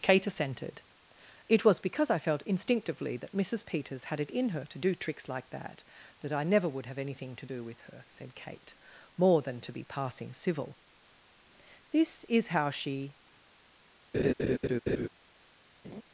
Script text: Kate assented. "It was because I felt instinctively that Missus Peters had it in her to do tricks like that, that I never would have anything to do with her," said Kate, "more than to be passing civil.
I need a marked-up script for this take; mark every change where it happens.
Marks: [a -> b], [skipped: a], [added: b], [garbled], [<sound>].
Kate assented. "It was because I felt instinctively that Missus Peters had it in her to do tricks like that, that I never would have anything to do with her," said Kate, "more than to be passing civil. [added: This is how she] [laugh] [laugh]